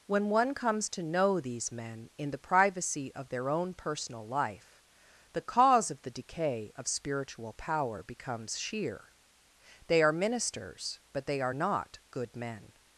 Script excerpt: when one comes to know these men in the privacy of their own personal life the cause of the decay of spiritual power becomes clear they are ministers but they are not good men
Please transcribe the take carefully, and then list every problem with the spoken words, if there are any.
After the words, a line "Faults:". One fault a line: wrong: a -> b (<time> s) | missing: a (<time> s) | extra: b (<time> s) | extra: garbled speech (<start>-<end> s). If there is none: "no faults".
when one comes to know these men in the privacy of their own personal life the cause of the decay of spiritual power becomes sheer they are ministers but they are not good men
Faults:
wrong: clear -> sheer (8.6 s)